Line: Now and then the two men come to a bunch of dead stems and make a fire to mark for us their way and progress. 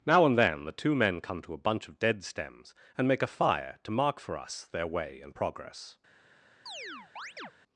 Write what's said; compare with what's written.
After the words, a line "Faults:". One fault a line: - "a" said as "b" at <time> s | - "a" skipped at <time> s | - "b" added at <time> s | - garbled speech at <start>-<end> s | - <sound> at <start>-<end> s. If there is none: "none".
Now and then the two men come to a bunch of dead stems and make a fire to mark for us their way and progress.
Faults:
- chirp at 6.7-7.5 s